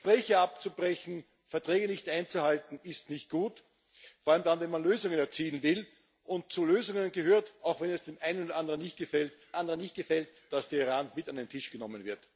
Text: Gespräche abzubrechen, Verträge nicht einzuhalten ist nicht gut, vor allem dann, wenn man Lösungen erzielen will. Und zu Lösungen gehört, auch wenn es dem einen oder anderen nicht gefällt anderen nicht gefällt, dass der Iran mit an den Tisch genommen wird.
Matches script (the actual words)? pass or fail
pass